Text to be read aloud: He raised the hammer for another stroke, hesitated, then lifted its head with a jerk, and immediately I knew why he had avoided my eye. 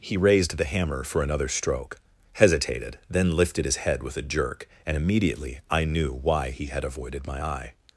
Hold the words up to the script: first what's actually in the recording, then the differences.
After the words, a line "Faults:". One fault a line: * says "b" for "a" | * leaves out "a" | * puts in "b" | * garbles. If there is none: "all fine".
He raised the hammer for another stroke, hesitated, then lifted his head with a jerk, and immediately I knew why he had avoided my eye.
Faults:
* says "his" for "its"